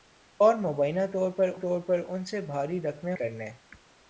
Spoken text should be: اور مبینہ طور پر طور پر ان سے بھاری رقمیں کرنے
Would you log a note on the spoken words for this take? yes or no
no